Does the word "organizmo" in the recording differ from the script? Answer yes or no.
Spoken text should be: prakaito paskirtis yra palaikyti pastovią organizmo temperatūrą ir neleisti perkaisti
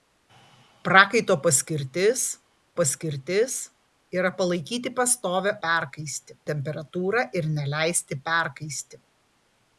yes